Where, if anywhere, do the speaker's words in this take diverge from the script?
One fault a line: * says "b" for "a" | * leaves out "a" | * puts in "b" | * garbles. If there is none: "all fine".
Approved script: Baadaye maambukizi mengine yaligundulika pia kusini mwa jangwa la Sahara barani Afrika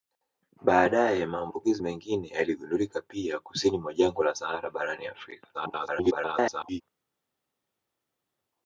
* garbles